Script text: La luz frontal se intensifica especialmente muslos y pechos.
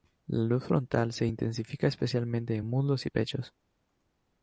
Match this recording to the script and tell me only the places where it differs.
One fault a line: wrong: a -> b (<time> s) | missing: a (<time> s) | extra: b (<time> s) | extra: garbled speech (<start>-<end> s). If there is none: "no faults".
extra: en (2.5 s)